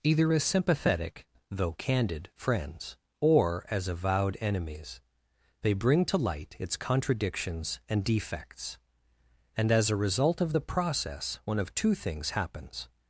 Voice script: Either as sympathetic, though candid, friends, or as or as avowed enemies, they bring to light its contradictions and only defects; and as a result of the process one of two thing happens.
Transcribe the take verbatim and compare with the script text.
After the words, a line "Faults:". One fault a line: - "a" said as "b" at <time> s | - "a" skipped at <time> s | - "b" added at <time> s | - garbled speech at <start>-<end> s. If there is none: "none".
Either as sympathetic, though candid, friends, or as avowed enemies, they bring to light its contradictions and defects; and as a result of the process one of two things happens.
Faults:
- "or as" skipped at 3.9 s
- "only" skipped at 8.0 s
- "thing" said as "things" at 11.9 s